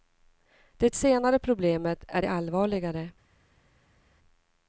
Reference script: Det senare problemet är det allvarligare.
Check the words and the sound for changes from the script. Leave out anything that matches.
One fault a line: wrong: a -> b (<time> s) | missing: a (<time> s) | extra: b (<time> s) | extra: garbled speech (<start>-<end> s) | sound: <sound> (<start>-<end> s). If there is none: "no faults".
no faults